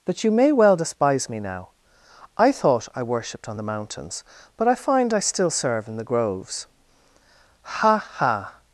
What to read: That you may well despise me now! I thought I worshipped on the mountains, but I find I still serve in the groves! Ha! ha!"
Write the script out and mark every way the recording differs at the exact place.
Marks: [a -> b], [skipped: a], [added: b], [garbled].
That you may well despise me now! I thought I worshipped on the mountains, but I find I still serve in the groves! Ha! ha!"